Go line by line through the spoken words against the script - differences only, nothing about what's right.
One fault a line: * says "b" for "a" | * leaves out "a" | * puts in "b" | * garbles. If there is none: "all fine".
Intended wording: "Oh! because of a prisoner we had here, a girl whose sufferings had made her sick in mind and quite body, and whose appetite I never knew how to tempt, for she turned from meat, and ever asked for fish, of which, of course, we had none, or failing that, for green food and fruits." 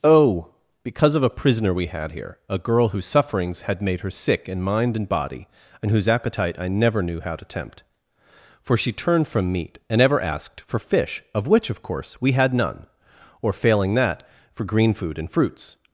* leaves out "quite"